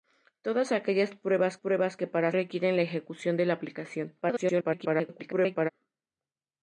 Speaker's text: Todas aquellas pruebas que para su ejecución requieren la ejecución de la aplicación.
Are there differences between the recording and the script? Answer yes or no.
yes